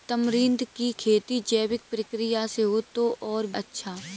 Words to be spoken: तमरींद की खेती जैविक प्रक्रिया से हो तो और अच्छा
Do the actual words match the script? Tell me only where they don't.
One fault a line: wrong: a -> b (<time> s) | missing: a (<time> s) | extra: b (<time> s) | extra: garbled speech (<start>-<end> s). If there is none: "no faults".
no faults